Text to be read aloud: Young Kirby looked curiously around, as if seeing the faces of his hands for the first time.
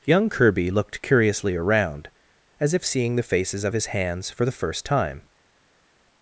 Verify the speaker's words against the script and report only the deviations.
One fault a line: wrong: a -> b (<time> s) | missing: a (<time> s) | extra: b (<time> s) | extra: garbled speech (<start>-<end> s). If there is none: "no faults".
no faults